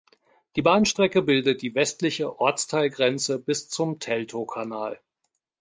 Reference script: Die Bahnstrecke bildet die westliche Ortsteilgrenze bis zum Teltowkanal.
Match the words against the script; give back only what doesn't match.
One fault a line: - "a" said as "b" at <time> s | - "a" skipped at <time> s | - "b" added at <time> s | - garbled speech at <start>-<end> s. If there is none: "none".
none